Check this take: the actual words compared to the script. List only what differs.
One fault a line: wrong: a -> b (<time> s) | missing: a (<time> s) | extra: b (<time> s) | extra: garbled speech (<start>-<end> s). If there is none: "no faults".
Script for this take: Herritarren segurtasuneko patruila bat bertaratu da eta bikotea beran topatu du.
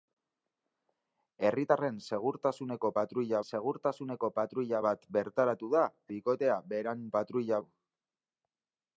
extra: segurtasuneko patruila (3.5 s)
missing: eta (5.9 s)
wrong: topatu -> patruila (7.2 s)